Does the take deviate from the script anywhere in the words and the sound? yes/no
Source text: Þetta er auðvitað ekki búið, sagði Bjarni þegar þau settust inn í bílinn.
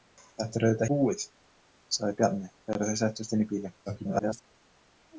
yes